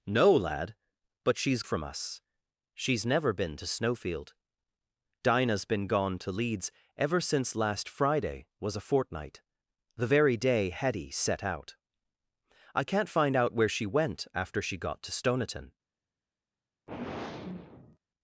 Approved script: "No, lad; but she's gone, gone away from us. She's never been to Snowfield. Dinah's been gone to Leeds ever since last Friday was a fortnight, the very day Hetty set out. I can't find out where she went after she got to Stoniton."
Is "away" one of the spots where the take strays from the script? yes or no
yes